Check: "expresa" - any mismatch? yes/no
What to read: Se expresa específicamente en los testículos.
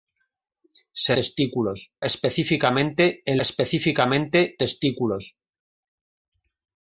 yes